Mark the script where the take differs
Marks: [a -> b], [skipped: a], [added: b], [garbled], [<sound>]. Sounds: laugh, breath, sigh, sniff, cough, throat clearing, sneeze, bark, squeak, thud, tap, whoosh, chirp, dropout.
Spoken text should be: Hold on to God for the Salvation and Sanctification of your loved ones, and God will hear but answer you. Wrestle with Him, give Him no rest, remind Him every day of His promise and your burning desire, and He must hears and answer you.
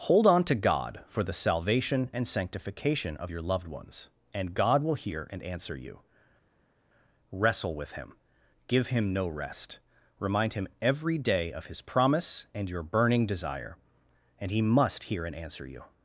Hold on to God for the Salvation and Sanctification of your loved ones, and God will hear [but -> and] answer you. Wrestle with Him, give Him no rest, remind Him every day of His promise and your burning desire, and He must [hears -> hear] and answer you.